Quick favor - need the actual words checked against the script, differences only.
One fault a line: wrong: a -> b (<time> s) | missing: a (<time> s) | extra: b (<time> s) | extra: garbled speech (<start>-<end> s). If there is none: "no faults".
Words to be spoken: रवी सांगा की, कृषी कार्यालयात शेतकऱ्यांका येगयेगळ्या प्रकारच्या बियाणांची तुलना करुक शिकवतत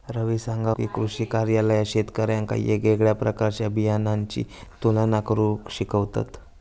no faults